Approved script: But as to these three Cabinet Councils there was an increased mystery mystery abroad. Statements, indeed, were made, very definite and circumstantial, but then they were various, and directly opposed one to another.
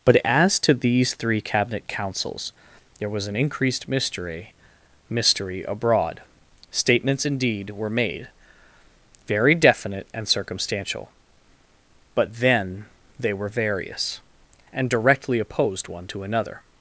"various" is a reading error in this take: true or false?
false